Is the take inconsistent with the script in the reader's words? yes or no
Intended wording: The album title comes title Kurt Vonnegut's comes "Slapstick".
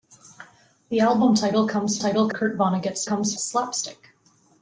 no